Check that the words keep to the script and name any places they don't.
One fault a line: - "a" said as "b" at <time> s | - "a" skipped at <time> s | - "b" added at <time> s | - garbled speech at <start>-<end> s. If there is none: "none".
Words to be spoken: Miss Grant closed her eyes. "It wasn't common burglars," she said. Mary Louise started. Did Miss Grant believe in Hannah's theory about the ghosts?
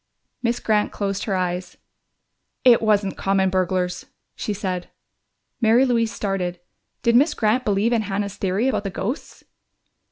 none